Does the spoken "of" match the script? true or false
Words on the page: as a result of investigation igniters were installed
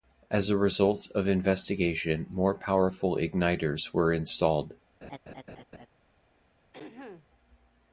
true